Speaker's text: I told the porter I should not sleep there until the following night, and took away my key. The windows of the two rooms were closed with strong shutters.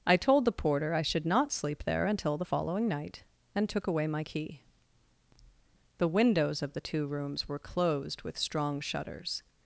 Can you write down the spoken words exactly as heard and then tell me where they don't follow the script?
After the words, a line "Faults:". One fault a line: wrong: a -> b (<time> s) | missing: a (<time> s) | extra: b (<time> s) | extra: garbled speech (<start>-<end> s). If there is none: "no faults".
I told the porter I should not sleep there until the following night, and took away my key. The windows of the two rooms were closed with strong shutters.
Faults:
no faults